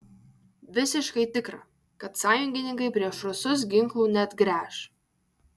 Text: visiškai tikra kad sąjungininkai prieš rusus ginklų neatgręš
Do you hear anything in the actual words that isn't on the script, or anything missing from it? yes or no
no